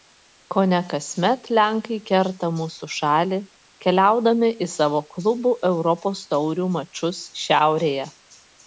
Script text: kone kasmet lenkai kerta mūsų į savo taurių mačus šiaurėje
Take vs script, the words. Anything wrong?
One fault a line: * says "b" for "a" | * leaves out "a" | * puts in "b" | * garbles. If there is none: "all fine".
* puts in "šalį keliaudami"
* puts in "klubų europos"